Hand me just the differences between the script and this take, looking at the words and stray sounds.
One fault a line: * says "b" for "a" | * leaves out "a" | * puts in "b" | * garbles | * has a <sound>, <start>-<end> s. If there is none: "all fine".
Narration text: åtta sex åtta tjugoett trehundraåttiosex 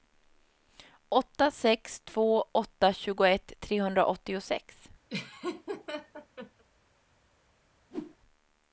* puts in "två"
* has a laugh, 5.1-6.6 s
* has a whoosh, 7.9-8.2 s